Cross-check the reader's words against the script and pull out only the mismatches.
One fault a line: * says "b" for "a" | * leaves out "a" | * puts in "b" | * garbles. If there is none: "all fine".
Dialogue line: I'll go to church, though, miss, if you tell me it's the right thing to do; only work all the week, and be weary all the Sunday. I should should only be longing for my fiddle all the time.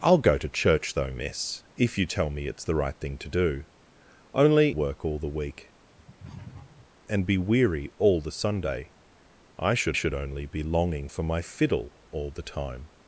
all fine